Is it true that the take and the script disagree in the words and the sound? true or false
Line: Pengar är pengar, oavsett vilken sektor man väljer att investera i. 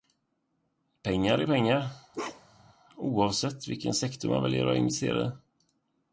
true